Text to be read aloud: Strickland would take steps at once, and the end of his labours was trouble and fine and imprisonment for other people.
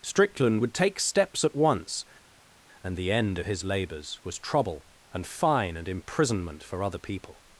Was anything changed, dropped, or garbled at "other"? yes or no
no